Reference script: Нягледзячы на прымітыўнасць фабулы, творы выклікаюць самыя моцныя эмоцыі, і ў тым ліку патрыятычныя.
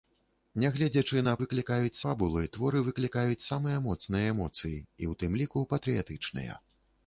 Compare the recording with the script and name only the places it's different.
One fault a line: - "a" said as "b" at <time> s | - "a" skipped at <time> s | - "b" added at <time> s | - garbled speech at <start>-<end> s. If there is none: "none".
- "прымітыўнасць" said as "выклікаюць" at 1.4 s